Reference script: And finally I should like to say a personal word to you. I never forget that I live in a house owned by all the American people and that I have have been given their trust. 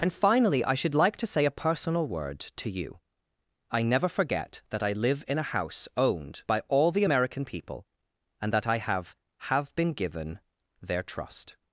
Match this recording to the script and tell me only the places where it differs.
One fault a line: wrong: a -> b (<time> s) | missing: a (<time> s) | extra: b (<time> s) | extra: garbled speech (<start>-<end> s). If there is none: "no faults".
no faults